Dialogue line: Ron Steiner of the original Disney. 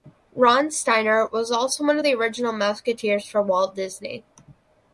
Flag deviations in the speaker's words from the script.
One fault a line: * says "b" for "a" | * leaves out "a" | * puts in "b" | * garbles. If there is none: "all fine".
* puts in "was also one"
* puts in "Mouseketeers for Walt"